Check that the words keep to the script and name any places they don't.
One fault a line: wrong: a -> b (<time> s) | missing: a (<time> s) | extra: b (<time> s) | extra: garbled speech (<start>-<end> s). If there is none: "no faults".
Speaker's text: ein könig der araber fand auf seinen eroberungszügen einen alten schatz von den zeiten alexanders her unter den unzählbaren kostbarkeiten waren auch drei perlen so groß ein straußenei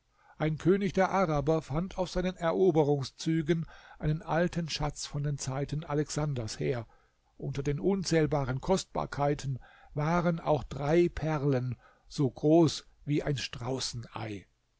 extra: wie (13.1 s)